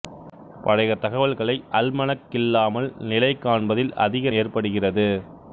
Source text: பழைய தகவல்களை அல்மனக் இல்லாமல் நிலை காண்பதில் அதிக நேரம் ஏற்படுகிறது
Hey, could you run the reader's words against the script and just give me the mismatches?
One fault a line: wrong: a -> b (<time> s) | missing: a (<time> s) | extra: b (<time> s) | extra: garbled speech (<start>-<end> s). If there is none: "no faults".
missing: நேரம் (4.3 s)